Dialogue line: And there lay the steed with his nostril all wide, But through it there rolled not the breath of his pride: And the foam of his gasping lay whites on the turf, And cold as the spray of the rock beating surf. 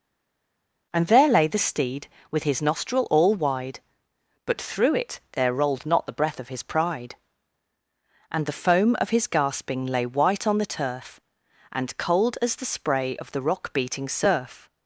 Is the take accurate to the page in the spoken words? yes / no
no